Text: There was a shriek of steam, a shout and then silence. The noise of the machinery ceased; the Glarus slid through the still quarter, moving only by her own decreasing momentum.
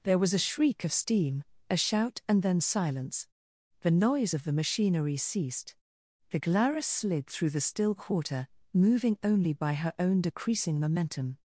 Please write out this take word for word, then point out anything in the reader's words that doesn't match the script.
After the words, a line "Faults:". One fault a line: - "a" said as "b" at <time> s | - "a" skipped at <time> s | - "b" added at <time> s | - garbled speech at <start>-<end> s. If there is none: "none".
There was a shriek of steam, a shout and then silence. The noise of the machinery ceased; the Glarus slid through the still quarter, moving only by her own decreasing momentum.
Faults:
none